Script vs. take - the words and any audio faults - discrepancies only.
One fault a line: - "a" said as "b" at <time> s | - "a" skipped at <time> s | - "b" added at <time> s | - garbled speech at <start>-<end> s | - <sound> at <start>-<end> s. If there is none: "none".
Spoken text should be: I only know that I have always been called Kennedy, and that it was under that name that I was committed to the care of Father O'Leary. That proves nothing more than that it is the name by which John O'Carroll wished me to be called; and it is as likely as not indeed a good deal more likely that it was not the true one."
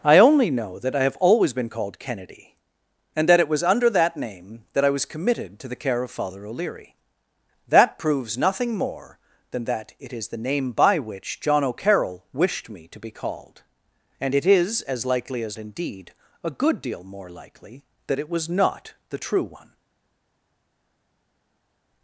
- "not" skipped at 15.6 s